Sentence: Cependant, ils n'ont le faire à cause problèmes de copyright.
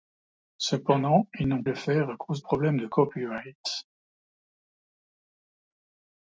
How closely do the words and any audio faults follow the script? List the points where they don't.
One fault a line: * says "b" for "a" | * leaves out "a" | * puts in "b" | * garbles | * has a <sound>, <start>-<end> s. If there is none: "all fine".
all fine